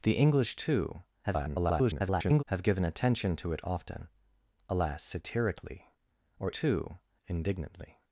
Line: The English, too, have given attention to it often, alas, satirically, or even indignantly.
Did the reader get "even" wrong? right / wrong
wrong